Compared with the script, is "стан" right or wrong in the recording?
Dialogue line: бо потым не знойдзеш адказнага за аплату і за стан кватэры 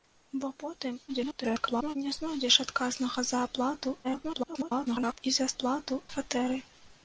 wrong